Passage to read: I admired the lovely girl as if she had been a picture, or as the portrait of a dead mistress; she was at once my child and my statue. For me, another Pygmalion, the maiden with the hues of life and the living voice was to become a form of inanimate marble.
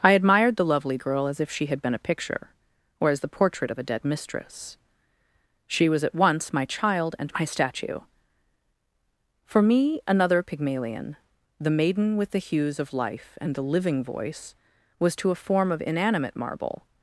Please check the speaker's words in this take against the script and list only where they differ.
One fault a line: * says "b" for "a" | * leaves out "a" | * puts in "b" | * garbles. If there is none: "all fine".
* leaves out "become"